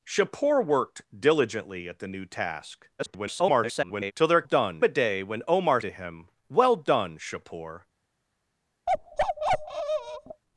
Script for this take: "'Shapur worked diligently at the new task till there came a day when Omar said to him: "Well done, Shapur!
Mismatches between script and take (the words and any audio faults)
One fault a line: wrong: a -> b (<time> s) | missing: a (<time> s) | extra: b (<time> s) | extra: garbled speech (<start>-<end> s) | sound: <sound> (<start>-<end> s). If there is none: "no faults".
extra: garbled speech (3.0-4.1 s)
wrong: came -> done (4.4 s)
missing: said (5.8 s)
sound: bark (8.9-10.4 s)